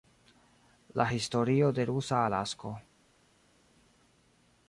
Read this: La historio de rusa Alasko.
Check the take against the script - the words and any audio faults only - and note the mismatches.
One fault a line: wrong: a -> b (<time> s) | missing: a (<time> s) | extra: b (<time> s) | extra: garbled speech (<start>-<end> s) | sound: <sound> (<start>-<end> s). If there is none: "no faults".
no faults